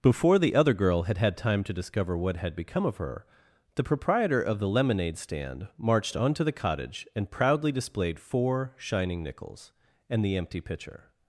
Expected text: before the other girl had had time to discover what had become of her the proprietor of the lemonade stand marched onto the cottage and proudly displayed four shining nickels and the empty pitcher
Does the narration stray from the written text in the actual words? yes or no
no